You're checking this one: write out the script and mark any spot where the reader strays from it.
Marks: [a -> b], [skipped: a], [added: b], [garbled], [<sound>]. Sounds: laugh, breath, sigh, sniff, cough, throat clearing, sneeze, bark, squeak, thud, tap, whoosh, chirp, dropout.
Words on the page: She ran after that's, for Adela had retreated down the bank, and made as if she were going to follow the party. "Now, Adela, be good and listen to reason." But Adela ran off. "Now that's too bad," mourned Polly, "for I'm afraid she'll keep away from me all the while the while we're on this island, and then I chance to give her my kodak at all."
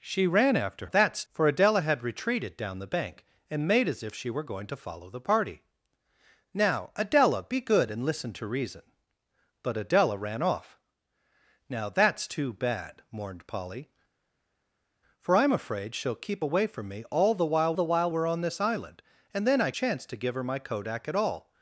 She ran after that's, for Adela had retreated down the bank, and made as if she were going to follow the party. "Now, Adela, be good and listen to reason." But Adela ran off. "Now that's too bad," mourned Polly, "for I'm afraid she'll keep away from me all the while the while we're on this island, and then I chance to give her my kodak at all."